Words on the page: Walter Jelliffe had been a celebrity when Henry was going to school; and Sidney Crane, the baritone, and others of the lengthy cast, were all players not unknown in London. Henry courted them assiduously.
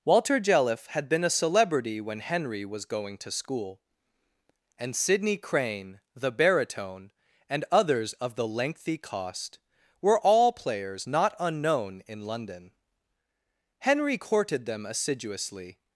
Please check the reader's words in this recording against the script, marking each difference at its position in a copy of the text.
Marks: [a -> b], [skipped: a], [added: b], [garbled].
Walter Jelliffe had been a celebrity when Henry was going to school; and Sidney Crane, the baritone, and others of the lengthy [cast, -> cost] were all players not unknown in London. Henry courted them assiduously.